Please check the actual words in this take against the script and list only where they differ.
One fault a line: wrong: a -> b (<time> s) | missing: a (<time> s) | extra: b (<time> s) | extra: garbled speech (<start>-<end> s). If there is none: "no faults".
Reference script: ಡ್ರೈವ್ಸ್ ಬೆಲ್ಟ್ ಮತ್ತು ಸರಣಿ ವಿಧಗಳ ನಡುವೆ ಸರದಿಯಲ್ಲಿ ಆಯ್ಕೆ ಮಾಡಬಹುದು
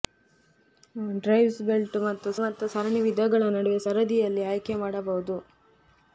extra: ಮತ್ತು (2.4 s)